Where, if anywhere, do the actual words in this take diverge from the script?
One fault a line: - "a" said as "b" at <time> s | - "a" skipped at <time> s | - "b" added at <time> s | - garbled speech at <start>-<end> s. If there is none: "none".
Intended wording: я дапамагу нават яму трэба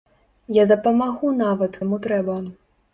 none